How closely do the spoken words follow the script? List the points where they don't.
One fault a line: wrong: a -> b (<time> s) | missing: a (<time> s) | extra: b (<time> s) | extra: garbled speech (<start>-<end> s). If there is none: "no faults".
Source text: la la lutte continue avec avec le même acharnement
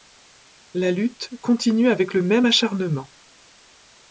missing: la (0.9 s)
missing: avec (2.1 s)